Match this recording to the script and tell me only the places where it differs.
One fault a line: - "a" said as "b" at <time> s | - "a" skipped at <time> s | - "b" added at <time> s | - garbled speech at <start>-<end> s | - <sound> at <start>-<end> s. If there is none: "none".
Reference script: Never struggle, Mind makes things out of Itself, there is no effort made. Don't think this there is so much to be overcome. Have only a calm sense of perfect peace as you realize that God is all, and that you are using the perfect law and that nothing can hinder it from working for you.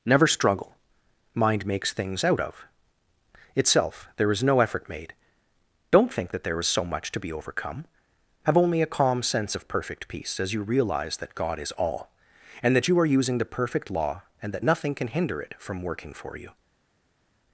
- "this" said as "that" at 6.3 s